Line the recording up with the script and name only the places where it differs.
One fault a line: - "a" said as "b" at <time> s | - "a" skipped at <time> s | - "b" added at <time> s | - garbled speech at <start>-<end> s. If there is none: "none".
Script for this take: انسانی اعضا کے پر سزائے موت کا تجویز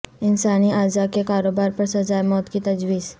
- "کاروبار" added at 1.2 s
- "کا" said as "کی" at 2.5 s